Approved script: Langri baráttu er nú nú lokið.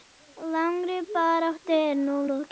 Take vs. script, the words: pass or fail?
fail